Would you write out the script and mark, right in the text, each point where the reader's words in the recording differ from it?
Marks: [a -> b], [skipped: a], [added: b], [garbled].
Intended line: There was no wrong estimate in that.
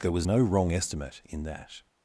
There was no wrong estimate in that.